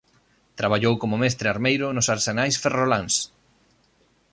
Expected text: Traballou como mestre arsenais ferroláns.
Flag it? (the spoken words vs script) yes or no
yes